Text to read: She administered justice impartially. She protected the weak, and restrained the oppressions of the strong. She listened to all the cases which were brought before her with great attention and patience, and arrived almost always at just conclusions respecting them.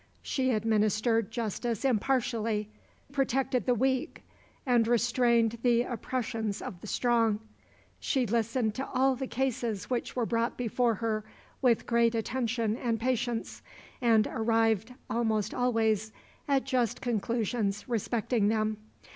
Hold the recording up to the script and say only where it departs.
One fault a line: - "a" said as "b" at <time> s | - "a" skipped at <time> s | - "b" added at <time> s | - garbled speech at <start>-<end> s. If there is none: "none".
- "She" skipped at 2.7 s